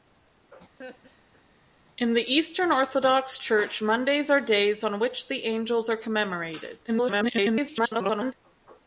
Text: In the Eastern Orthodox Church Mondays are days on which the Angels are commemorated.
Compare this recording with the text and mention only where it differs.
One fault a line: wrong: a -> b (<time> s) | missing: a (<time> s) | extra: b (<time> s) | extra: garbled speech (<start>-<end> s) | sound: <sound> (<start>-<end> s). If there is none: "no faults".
sound: laugh (0.8-1.4 s)
extra: garbled speech (6.9-8.3 s)